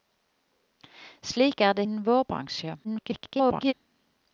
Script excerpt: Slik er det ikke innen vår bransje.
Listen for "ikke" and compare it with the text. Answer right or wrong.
wrong